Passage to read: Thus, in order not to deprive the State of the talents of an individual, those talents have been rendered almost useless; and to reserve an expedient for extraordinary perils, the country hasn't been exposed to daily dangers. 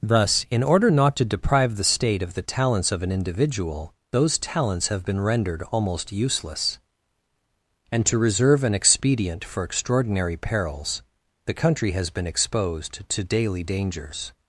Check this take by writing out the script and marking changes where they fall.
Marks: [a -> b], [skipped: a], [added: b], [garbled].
Thus, in order not to deprive the State of the talents of an individual, those talents have been rendered almost useless; and to reserve an expedient for extraordinary perils, the country [hasn't -> has] been exposed to daily dangers.